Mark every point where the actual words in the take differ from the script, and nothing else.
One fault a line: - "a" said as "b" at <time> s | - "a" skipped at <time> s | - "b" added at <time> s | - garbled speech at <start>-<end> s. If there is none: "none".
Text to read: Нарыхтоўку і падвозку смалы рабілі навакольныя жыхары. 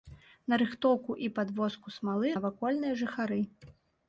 - "рабілі" skipped at 2.3 s